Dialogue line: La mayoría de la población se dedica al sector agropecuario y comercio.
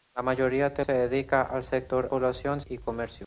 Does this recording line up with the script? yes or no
no